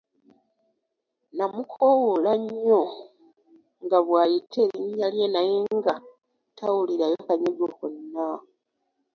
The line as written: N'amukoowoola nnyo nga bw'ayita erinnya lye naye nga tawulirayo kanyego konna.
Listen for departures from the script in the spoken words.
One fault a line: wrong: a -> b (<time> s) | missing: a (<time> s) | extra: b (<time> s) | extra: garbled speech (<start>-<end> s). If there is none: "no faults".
no faults